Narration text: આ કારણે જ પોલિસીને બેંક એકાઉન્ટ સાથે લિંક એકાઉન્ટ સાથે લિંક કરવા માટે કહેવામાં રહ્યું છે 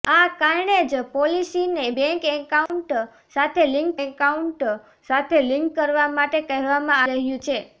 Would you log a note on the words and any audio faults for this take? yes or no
yes